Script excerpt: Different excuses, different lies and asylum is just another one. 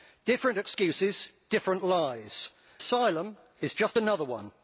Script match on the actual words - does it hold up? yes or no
no